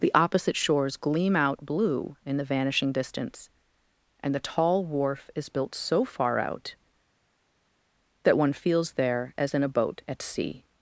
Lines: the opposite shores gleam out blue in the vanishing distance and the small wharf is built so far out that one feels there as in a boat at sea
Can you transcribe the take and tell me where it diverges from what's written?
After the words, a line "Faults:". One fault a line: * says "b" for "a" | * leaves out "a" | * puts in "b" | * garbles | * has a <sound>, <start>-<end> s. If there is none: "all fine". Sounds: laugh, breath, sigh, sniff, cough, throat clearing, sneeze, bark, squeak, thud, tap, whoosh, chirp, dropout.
the opposite shores gleam out blue in the vanishing distance and the tall wharf is built so far out that one feels there as in a boat at sea
Faults:
* says "tall" for "small"